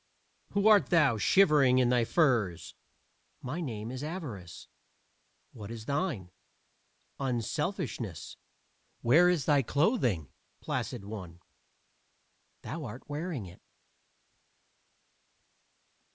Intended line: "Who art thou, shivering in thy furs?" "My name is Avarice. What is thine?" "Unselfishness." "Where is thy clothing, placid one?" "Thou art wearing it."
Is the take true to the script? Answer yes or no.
yes